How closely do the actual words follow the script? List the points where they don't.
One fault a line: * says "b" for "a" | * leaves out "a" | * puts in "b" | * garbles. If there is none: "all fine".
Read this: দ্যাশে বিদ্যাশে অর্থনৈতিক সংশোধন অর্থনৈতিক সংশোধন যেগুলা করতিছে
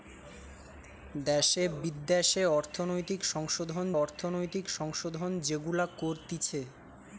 all fine